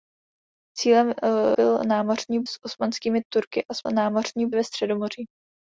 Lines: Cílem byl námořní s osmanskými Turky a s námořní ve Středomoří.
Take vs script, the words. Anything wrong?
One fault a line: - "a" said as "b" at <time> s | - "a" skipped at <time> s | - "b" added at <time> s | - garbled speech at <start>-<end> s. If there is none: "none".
none